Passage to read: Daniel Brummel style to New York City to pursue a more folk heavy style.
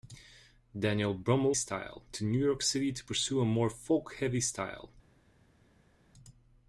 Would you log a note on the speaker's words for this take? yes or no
no